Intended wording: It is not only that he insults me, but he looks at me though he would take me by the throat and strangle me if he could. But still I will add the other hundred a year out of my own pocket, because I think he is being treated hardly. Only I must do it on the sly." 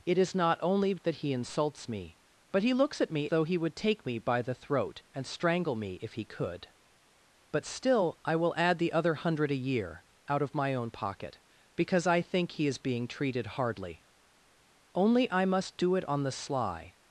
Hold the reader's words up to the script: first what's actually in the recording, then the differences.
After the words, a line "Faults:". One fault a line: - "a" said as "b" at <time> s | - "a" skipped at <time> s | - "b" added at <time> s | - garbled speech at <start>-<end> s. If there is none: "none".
It is not only that he insults me, but he looks at me though he would take me by the throat and strangle me if he could. But still I will add the other hundred a year out of my own pocket, because I think he is being treated hardly. Only I must do it on the sly."
Faults:
none